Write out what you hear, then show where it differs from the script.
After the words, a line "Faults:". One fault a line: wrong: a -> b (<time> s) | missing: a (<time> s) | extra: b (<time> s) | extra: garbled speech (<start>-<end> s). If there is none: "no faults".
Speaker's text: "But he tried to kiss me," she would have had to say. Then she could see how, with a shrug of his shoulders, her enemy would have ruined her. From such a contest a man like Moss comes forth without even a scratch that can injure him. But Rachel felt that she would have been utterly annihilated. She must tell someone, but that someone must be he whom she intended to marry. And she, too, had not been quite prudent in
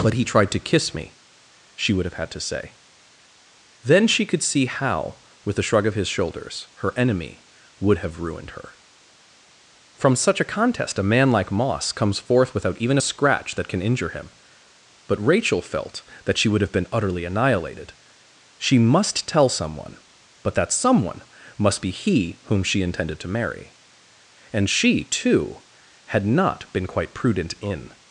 "But he tried to kiss me," she would have had to say. Then she could see how, with a shrug of his shoulders, her enemy would have ruined her. From such a contest a man like Moss comes forth without even a scratch that can injure him. But Rachel felt that she would have been utterly annihilated. She must tell someone, but that someone must be he whom she intended to marry. And she, too, had not been quite prudent in
Faults:
no faults